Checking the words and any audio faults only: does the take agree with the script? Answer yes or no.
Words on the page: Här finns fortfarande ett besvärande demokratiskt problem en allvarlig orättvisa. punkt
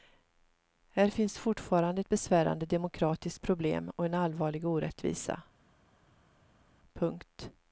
no